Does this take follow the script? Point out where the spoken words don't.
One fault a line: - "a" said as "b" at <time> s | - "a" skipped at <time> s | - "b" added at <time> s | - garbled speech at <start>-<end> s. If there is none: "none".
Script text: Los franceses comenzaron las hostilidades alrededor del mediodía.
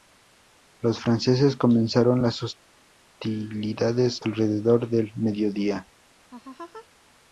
none